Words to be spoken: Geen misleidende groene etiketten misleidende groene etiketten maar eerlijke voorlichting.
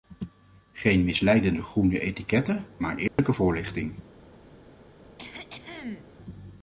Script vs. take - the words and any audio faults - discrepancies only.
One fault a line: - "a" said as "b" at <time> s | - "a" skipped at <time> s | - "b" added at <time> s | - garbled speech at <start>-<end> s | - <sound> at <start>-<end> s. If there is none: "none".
- "misleidende groene etiketten" skipped at 2.6 s
- dropout at 3.1-3.2 s
- cough at 5.2-6.1 s